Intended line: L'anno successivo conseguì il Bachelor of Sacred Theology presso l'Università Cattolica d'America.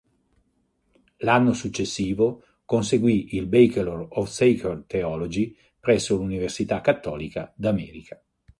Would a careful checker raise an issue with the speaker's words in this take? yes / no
no